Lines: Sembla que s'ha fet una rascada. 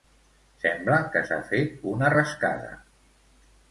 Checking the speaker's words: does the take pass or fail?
pass